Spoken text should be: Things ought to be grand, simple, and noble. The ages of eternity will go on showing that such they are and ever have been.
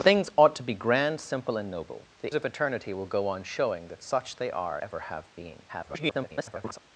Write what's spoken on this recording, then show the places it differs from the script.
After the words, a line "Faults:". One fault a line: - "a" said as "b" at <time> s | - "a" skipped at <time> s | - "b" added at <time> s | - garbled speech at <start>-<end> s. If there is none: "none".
Things ought to be grand, simple, and noble. The of eternity will go on showing that such they are ever have been. [garbled]
Faults:
- "ages" skipped at 2.4 s
- "and" skipped at 4.8 s
- garbled speech at 5.7-6.8 s